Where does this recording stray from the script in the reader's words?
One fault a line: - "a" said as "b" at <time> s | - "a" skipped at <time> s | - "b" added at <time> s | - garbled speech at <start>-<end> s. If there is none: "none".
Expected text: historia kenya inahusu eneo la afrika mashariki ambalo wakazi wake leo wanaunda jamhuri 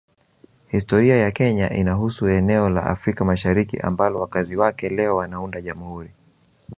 - "ya" added at 1.2 s